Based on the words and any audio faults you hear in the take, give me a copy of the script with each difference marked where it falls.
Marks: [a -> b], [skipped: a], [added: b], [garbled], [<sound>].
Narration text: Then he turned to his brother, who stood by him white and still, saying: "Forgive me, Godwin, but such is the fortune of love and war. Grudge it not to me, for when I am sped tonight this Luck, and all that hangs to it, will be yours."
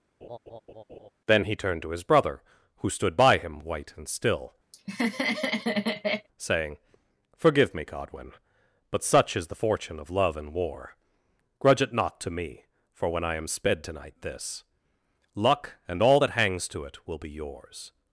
[laugh] Then he turned to his brother, who stood by him white and still, [laugh] saying: "Forgive me, Godwin, but such is the fortune of love and war. Grudge it not to me, for when I am sped tonight this Luck, and all that hangs to it, will be yours."